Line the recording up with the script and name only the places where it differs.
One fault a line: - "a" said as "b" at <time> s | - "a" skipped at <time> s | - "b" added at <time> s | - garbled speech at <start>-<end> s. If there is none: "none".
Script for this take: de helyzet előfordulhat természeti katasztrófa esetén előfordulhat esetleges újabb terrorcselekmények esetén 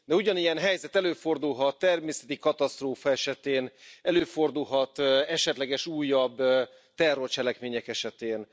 - "ugyanilyen" added at 0.1 s